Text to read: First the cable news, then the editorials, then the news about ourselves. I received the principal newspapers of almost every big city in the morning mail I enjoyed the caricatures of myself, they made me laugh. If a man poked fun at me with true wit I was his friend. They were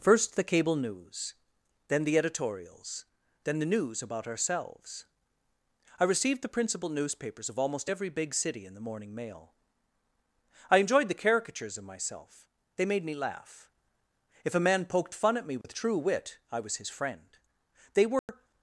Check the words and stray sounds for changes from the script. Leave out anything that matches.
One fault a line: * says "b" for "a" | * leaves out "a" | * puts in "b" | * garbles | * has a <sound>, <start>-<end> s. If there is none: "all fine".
* has a dropout, 15.6-15.6 s
* has a dropout, 18.2-18.3 s